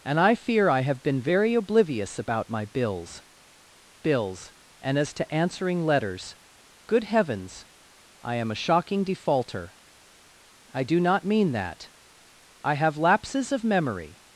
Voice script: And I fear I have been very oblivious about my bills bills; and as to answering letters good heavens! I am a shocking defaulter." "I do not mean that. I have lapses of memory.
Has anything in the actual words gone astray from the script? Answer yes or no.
no